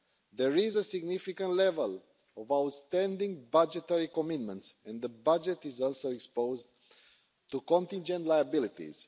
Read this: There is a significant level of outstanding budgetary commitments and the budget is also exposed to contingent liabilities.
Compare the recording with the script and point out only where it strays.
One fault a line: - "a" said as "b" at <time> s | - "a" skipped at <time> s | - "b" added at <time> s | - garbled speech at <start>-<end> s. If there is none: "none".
none